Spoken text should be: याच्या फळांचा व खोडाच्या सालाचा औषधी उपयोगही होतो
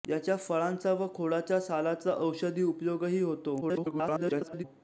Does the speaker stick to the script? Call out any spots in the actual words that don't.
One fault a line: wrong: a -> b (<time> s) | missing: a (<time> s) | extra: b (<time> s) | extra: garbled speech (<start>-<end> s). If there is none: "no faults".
extra: garbled speech (3.6-4.6 s)